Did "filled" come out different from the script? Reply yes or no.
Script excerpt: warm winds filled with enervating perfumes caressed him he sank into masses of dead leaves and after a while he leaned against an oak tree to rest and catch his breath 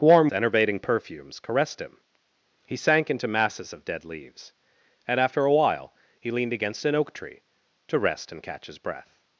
yes